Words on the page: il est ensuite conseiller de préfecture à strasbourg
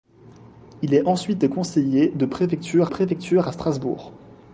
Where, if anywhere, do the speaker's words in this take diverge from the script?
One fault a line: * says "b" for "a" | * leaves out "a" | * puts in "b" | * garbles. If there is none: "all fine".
* puts in "préfecture"